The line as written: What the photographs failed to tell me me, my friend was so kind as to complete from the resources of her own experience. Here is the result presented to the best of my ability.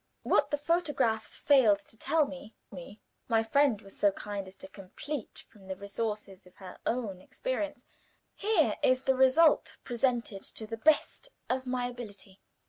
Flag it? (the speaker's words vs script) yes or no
no